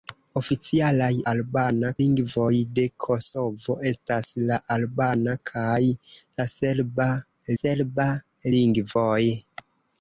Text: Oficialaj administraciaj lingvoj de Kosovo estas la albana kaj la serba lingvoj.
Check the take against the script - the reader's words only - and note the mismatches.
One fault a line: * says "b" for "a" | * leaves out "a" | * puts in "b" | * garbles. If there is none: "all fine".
* says "albana" for "administraciaj"
* puts in "serba"